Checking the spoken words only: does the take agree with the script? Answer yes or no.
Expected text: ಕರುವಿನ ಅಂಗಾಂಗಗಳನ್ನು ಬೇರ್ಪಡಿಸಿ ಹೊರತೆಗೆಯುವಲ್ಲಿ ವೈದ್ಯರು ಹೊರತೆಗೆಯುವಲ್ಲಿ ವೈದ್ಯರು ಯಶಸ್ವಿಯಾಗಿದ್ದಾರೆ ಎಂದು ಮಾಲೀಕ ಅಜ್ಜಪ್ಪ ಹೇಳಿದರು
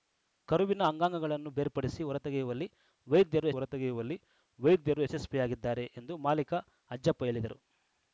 yes